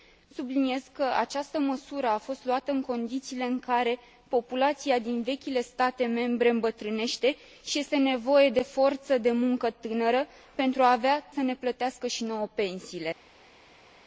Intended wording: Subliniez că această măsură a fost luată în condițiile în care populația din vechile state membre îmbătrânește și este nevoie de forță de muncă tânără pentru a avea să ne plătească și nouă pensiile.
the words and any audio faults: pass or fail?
pass